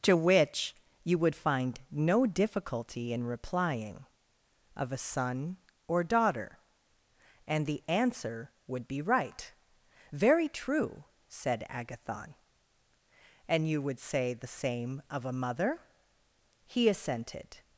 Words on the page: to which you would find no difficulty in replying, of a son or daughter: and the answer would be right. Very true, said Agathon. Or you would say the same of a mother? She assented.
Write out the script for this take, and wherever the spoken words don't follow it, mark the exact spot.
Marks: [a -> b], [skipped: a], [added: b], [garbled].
to which you would find no difficulty in replying, of a son or daughter: and the answer would be right. Very true, said Agathon. [Or -> And] you would say the same of a mother? [She -> He] assented.